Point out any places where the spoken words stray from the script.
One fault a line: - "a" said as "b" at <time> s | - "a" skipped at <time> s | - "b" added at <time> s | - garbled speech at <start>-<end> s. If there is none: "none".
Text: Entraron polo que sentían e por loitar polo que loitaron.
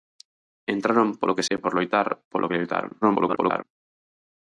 - "sentían" skipped at 1.5 s
- garbled speech at 3.0-3.6 s